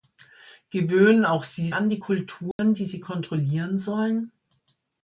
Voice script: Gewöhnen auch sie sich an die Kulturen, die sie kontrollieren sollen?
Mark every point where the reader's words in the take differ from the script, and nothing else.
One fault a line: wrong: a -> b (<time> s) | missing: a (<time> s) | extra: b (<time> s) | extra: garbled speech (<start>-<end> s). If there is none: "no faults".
missing: sich (1.7 s)